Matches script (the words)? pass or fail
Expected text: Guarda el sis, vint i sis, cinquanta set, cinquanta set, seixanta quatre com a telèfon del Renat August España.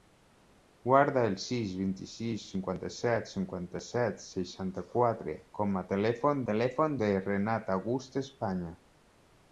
fail